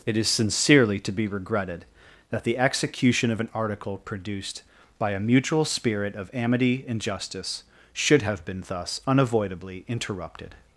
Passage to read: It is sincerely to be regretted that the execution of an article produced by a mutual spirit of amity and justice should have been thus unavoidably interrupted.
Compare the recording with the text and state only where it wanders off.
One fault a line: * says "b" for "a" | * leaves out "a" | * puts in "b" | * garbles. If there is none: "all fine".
all fine